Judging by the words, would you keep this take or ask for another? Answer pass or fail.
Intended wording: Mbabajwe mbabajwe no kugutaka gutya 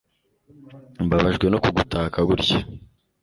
fail